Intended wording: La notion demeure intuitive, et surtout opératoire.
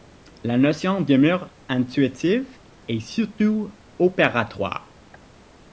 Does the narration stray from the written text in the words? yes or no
no